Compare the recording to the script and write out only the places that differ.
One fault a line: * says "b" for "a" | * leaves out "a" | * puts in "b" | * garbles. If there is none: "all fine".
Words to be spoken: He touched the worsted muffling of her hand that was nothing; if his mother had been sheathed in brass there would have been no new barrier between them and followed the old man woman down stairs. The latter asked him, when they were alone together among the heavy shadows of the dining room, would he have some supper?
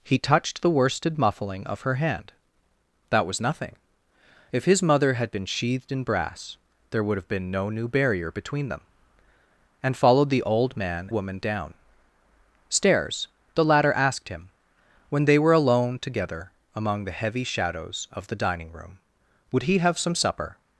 all fine